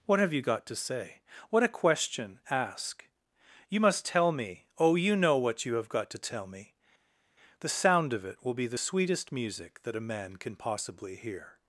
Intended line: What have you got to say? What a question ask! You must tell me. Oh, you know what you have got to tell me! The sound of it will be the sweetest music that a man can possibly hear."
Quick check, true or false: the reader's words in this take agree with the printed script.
true